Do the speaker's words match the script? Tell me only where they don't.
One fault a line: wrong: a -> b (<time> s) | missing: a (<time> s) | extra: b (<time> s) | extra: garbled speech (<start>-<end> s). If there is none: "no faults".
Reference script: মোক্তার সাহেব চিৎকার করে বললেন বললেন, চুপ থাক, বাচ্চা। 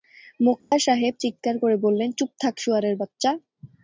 missing: বললেন (2.1 s)
extra: শুয়োরের (2.6 s)